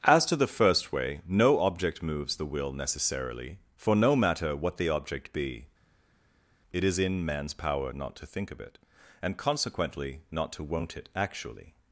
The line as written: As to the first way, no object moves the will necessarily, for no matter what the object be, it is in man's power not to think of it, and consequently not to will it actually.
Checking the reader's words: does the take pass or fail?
fail